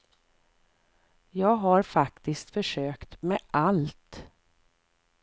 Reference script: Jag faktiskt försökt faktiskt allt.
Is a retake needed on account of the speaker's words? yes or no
yes